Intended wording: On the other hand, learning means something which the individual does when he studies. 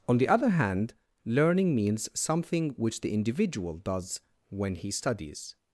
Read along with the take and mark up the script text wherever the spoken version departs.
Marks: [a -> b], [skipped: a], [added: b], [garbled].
On the other hand, learning means something which the individual does when he studies.